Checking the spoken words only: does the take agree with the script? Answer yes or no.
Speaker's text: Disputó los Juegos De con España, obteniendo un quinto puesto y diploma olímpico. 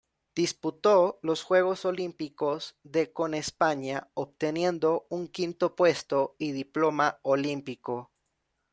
no